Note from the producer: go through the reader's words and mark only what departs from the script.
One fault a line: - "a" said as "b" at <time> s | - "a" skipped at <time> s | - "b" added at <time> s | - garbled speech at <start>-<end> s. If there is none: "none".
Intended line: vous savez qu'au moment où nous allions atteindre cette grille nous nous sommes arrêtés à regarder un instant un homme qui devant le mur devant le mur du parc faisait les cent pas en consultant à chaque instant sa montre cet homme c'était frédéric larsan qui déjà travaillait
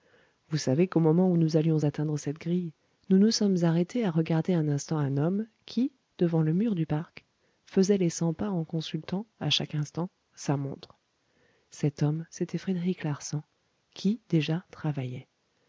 - "devant le mur" skipped at 6.7 s